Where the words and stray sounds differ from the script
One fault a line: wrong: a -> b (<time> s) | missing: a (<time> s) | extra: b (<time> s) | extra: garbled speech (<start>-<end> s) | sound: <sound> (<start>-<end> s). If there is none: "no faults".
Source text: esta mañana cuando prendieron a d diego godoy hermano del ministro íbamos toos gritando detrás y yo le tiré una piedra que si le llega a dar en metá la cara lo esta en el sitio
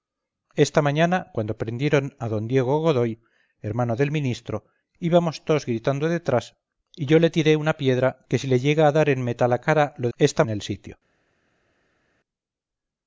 no faults